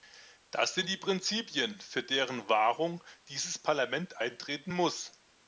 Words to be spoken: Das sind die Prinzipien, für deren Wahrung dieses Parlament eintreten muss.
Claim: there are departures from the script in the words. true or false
false